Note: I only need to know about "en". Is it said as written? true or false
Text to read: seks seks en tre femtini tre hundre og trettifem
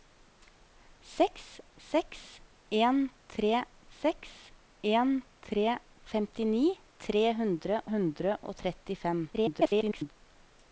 true